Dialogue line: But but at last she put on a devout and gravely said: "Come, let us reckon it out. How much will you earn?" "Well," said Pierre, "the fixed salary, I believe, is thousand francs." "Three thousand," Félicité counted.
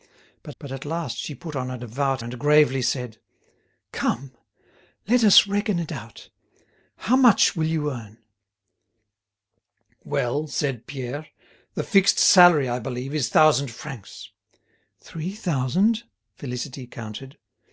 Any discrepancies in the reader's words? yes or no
no